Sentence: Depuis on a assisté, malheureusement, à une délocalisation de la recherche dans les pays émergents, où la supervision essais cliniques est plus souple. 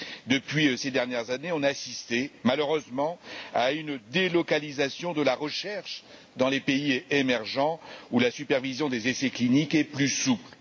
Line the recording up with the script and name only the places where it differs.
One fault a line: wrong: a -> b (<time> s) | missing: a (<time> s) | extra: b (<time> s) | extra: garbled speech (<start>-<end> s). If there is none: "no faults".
extra: ces dernières années (0.8 s)
extra: des (8.9 s)